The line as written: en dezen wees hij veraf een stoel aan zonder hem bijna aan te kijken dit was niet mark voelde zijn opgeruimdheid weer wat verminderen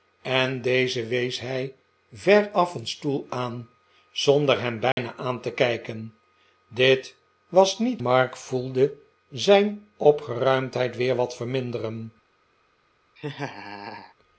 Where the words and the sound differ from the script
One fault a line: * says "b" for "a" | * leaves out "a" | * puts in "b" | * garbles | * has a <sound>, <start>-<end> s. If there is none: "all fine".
* has a dropout, 4.9-5.0 s
* has a laugh, 13.2-14.1 s